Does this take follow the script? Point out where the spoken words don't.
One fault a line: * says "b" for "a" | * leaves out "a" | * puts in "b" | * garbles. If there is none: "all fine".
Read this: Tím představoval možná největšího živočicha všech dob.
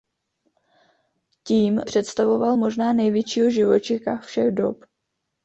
all fine